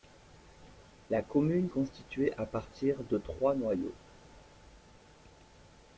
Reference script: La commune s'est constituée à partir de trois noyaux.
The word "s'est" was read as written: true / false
false